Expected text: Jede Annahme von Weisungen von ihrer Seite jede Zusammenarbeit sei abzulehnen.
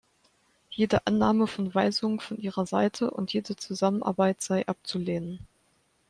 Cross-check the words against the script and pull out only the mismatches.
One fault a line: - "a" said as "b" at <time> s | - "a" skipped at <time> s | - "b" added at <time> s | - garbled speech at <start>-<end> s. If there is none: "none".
- "und" added at 3.1 s